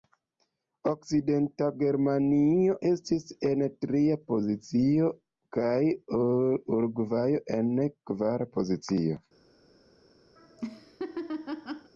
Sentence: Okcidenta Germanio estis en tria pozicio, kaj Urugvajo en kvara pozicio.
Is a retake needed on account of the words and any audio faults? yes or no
yes